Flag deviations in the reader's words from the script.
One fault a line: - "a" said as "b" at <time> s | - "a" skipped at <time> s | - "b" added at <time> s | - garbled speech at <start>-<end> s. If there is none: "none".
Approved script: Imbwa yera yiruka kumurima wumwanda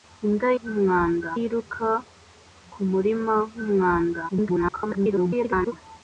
- "yera" said as "wumwanda" at 0.6 s
- garbled speech at 4.3-5.7 s